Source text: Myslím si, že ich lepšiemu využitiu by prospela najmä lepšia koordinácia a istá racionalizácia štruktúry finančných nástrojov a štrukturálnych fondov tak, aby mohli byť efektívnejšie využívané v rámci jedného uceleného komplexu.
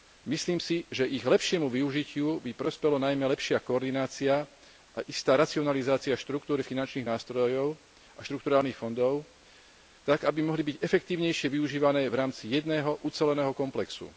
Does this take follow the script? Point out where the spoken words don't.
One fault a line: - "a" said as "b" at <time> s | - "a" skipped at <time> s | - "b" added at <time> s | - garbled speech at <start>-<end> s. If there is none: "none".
none